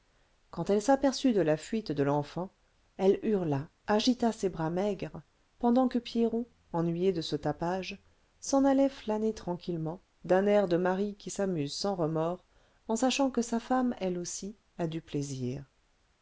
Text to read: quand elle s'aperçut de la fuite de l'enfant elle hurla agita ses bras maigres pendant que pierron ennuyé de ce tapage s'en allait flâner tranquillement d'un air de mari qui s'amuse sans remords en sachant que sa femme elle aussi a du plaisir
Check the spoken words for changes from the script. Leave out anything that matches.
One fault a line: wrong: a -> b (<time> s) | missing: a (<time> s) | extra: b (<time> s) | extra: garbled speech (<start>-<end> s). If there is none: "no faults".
no faults